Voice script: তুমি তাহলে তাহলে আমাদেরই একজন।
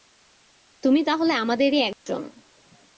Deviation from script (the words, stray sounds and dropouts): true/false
true